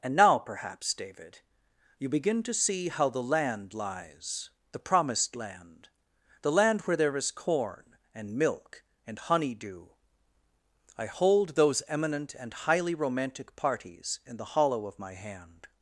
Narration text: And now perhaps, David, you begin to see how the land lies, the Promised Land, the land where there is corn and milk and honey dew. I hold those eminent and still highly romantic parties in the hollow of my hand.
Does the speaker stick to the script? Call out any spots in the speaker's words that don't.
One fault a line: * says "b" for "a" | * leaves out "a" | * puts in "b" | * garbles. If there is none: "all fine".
* leaves out "still"